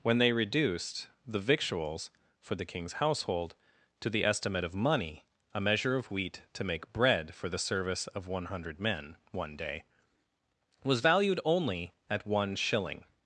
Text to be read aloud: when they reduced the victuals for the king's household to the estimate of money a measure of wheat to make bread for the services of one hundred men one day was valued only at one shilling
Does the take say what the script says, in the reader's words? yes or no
no